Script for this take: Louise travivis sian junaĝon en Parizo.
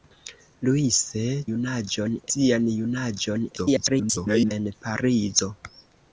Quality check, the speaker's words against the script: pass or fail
fail